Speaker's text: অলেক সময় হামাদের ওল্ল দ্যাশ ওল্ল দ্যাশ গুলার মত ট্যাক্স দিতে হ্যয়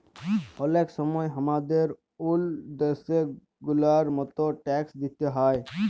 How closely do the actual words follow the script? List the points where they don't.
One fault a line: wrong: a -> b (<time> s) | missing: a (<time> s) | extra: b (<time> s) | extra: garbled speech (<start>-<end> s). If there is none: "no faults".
missing: ওল্ল দ্যাশ (3.0 s)